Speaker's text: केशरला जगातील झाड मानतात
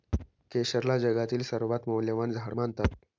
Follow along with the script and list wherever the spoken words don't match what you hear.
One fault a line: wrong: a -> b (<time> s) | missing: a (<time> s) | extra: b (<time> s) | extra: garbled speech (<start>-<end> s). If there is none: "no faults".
extra: सर्वात मौल्यवान (1.4 s)